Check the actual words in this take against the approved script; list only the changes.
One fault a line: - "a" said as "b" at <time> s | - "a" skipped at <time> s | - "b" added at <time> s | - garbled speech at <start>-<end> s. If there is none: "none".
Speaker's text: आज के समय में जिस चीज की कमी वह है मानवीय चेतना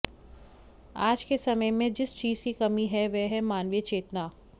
- "है" added at 2.9 s